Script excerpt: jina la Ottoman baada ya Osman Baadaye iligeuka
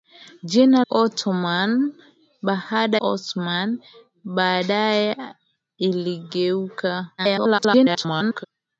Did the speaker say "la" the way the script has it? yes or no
no